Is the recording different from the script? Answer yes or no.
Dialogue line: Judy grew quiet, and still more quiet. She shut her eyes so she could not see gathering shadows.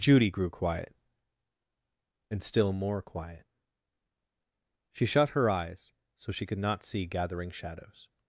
no